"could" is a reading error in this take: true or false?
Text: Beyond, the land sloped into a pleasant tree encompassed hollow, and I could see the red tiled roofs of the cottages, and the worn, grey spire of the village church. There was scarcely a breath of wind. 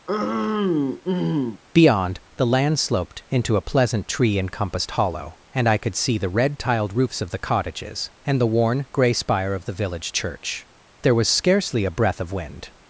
false